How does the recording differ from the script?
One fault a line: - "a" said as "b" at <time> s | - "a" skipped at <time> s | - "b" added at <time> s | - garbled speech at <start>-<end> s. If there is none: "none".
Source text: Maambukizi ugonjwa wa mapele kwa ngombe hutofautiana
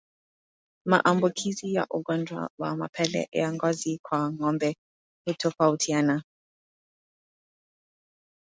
- "ya" added at 1.7 s
- "ya ngozi" added at 3.3 s